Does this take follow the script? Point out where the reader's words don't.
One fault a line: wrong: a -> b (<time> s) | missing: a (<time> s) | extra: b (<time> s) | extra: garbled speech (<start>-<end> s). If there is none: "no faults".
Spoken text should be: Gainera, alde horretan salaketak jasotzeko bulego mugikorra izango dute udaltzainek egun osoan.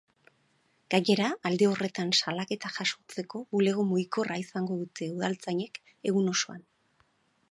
no faults